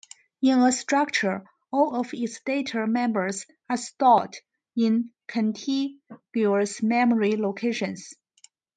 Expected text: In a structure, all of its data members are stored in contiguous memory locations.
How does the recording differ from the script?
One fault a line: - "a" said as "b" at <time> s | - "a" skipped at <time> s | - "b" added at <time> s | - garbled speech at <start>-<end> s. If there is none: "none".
none